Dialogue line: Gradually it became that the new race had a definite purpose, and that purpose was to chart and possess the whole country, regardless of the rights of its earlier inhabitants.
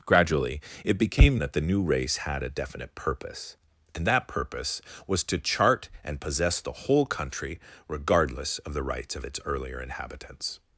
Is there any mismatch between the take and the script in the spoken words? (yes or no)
no